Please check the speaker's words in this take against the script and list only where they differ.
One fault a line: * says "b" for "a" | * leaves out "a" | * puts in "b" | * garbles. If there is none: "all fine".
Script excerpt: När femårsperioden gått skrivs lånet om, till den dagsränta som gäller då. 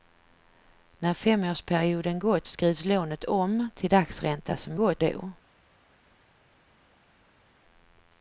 * leaves out "den"
* says "gått" for "gäller"